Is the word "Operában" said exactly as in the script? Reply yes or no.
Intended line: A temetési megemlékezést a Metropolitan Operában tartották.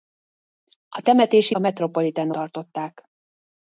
no